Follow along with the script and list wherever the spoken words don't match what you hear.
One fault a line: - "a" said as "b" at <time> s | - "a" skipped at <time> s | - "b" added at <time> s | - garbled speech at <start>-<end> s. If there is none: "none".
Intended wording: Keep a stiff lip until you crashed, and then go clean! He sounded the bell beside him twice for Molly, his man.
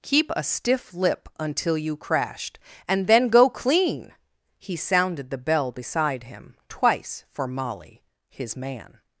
none